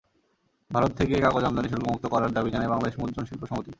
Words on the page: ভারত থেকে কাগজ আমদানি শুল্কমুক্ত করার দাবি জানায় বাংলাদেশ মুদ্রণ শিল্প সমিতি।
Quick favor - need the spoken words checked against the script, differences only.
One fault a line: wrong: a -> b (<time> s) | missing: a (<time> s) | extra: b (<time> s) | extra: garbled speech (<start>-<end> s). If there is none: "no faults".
no faults